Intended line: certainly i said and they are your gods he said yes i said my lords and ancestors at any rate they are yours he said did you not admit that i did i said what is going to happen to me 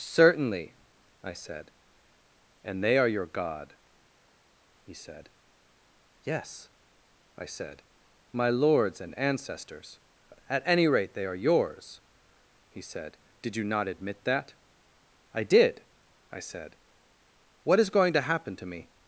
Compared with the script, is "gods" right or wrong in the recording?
wrong